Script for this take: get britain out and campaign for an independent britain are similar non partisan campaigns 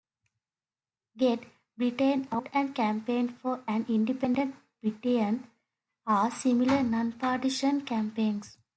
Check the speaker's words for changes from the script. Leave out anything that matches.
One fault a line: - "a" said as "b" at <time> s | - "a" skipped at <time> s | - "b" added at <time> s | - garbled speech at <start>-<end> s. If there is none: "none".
none